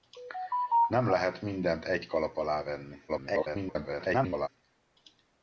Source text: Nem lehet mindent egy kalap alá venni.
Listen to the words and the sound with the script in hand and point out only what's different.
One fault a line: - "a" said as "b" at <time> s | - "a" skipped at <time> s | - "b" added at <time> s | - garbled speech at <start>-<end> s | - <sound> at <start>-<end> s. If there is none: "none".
- garbled speech at 3.1-4.5 s